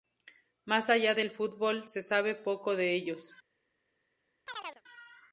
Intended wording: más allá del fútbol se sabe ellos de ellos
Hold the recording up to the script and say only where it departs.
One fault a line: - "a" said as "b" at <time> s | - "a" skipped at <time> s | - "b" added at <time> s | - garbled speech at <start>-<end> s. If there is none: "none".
- "ellos" said as "poco" at 2.3 s